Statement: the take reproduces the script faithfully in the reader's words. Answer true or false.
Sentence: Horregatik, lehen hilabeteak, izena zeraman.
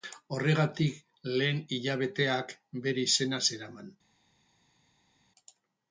false